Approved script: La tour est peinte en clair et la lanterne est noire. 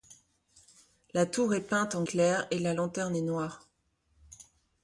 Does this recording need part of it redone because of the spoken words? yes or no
no